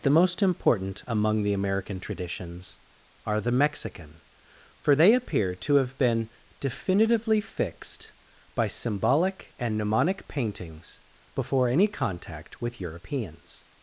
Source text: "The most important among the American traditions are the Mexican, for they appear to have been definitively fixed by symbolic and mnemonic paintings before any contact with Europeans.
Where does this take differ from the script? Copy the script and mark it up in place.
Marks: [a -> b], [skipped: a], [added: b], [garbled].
"The most important among the American traditions are the Mexican, for they appear to have been definitively fixed by symbolic and mnemonic paintings before any contact with Europeans.